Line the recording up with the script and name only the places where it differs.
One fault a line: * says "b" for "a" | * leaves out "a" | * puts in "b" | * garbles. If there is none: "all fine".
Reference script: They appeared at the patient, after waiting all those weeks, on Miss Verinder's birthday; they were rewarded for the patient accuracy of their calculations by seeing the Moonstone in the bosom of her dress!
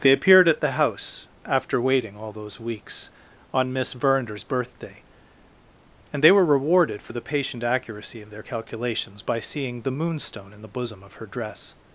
* says "house" for "patient"
* puts in "and"